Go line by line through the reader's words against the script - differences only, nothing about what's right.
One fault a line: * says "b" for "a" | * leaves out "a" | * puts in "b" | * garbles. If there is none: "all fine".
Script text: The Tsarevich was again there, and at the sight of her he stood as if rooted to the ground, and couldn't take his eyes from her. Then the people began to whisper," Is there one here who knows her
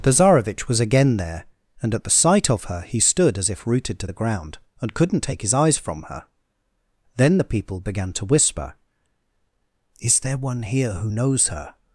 all fine